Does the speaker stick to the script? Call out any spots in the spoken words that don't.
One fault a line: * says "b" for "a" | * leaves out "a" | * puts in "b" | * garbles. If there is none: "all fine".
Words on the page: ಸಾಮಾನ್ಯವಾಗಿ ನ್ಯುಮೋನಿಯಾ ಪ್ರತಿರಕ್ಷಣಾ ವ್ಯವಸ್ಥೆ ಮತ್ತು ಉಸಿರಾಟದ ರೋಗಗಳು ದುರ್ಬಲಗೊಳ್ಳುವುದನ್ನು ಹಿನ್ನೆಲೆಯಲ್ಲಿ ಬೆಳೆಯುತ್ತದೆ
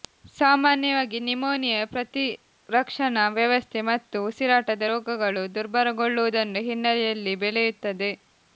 all fine